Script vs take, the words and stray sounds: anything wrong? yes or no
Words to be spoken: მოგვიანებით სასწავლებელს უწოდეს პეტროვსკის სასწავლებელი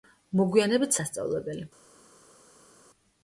yes